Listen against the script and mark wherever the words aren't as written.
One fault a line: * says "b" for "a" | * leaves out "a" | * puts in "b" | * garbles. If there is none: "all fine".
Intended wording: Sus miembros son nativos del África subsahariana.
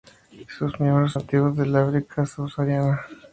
* leaves out "son"